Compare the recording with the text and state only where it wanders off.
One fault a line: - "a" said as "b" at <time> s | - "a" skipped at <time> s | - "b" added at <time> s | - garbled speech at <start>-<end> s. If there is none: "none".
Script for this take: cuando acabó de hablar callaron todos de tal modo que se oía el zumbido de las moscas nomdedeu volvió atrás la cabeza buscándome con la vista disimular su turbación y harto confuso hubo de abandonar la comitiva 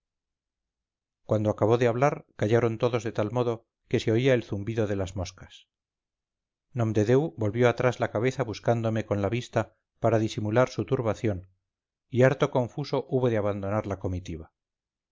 - "para" added at 10.0 s